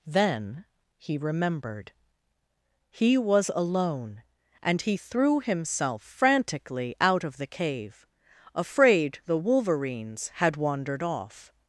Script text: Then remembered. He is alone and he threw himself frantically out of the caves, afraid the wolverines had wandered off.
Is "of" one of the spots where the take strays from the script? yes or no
no